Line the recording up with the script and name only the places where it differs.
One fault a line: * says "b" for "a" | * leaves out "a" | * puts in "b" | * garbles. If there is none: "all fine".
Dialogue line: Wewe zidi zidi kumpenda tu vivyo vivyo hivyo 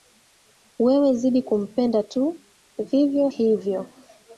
* leaves out "zidi"
* leaves out "vivyo"